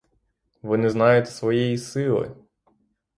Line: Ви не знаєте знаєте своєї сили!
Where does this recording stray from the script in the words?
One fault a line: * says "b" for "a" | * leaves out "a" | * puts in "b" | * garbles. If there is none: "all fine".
* leaves out "знаєте"